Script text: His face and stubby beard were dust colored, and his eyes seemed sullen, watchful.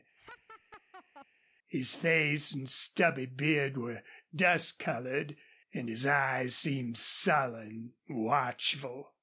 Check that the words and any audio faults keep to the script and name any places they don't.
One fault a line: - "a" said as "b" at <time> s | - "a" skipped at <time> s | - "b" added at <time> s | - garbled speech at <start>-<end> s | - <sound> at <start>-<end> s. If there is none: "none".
- laugh at 0.2-1.3 s